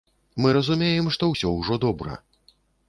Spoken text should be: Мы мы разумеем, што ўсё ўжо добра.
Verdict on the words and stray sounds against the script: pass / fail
fail